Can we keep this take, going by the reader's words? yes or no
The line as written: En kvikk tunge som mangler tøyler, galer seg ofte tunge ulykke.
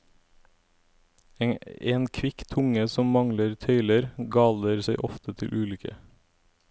no